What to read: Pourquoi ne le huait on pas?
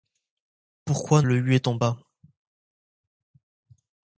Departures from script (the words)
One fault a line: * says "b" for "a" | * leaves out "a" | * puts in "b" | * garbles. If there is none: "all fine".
* leaves out "ne"